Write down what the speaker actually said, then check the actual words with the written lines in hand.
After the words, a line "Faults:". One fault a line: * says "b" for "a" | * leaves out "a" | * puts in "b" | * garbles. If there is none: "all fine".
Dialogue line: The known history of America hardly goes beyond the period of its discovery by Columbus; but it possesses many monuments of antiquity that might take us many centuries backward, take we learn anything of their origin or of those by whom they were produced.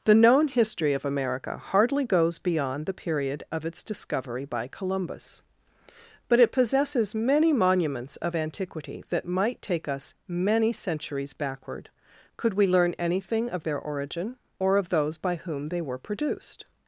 The known history of America hardly goes beyond the period of its discovery by Columbus; but it possesses many monuments of antiquity that might take us many centuries backward, could we learn anything of their origin or of those by whom they were produced.
Faults:
* says "could" for "take"